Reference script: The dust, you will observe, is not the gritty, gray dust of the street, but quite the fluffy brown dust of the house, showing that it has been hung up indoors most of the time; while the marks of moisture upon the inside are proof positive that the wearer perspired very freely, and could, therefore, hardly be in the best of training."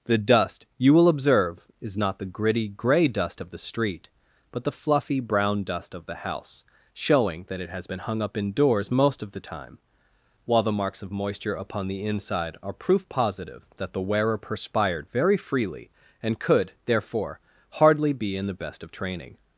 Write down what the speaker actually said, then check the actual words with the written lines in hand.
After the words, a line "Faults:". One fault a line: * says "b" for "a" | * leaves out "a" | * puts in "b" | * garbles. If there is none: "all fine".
The dust, you will observe, is not the gritty, gray dust of the street, but the fluffy brown dust of the house, showing that it has been hung up indoors most of the time; while the marks of moisture upon the inside are proof positive that the wearer perspired very freely, and could, therefore, hardly be in the best of training."
Faults:
* leaves out "quite"